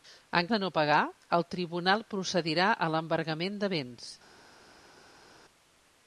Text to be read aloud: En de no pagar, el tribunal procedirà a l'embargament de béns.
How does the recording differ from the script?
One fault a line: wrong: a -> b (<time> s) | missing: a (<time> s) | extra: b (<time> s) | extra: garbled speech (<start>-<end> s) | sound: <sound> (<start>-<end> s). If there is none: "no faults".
no faults